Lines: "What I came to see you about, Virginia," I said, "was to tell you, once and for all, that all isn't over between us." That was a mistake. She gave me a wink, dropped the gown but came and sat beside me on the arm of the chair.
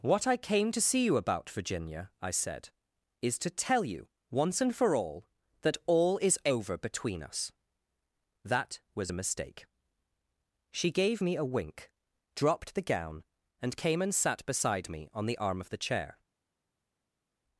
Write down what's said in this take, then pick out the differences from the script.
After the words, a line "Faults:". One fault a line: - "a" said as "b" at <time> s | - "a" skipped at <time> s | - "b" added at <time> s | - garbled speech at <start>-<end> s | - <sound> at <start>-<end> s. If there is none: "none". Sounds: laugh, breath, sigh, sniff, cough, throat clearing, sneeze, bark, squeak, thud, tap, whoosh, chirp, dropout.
"What I came to see you about, Virginia," I said, "is to tell you, once and for all, that all is over between us." That was a mistake. She gave me a wink, dropped the gown and came and sat beside me on the arm of the chair.
Faults:
- "was" said as "is" at 3.2 s
- "isn't" said as "is" at 6.2 s
- "but" said as "and" at 13.6 s